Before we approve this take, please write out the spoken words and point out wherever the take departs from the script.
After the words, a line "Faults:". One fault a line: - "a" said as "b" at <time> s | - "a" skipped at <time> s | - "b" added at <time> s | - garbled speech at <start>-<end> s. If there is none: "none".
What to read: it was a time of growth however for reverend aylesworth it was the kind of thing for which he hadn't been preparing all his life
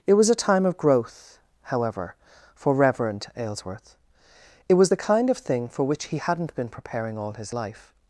it was a time of growth however for reverend aylesworth it was the kind of thing for which he hadn't been preparing all his life
Faults:
none